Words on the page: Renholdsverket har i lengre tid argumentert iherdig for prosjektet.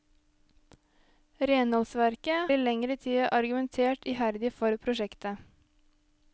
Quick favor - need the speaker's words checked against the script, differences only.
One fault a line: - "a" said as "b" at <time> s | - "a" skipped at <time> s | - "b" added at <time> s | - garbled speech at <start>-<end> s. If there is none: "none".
- "har" skipped at 2.5 s